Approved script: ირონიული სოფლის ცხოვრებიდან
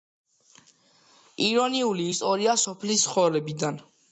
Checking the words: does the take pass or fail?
fail